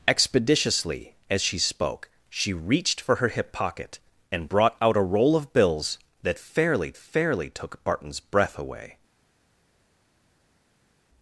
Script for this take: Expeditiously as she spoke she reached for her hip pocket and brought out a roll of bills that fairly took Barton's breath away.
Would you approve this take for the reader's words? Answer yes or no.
no